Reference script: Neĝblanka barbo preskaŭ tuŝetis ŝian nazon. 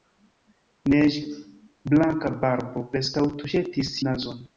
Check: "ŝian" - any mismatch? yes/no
yes